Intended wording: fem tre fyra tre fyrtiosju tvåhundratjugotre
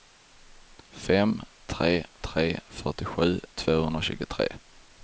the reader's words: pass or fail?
fail